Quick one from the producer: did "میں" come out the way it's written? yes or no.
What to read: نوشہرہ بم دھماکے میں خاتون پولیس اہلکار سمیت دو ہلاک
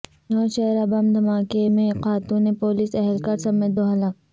yes